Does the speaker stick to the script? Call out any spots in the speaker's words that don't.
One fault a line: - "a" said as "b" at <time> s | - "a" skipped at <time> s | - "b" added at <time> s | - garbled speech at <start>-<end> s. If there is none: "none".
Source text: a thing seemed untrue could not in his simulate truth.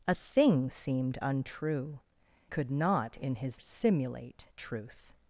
none